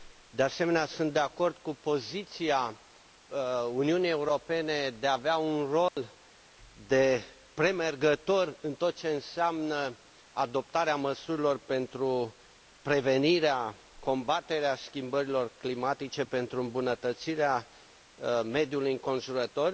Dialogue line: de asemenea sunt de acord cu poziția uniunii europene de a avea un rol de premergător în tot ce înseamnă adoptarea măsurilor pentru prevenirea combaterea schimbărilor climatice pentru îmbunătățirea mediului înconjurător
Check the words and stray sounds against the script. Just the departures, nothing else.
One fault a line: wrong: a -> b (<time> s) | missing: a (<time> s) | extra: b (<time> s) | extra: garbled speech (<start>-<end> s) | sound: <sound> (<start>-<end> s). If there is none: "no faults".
sound: dropout (5.9-6.0 s)